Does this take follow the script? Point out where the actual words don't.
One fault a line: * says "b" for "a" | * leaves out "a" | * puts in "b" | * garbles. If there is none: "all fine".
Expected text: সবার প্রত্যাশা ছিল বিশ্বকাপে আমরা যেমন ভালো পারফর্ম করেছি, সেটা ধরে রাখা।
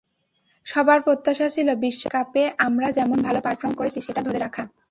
all fine